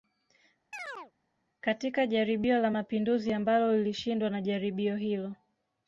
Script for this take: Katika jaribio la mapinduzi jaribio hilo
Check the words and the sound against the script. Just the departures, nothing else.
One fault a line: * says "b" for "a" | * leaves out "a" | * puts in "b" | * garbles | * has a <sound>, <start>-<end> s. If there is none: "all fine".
* has a chirp, 0.7-1.1 s
* puts in "ambalo lilishindwa na"